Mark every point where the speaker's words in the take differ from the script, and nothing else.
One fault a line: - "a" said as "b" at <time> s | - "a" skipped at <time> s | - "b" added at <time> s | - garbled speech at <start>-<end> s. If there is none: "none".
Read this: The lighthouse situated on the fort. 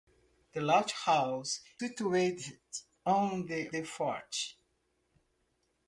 none